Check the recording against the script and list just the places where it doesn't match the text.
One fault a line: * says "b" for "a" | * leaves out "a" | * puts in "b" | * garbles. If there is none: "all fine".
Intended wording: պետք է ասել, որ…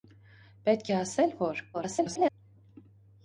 * garbles